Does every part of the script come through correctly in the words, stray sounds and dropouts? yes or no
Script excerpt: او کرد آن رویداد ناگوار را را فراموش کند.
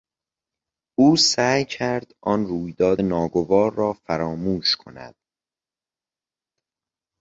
no